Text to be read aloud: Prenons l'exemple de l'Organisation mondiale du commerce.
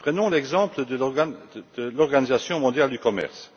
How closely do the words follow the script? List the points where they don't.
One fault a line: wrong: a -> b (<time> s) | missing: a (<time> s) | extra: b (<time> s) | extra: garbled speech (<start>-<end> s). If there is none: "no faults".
no faults